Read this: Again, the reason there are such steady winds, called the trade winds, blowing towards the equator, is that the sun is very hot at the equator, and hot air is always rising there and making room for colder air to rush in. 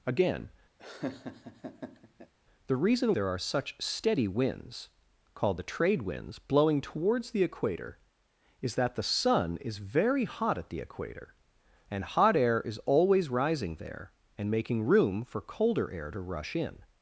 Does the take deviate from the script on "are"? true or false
false